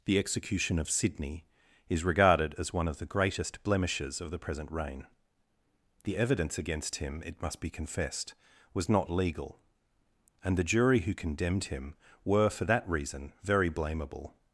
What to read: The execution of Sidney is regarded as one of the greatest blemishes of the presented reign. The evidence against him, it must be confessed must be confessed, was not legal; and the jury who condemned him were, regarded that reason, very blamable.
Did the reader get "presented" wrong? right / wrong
wrong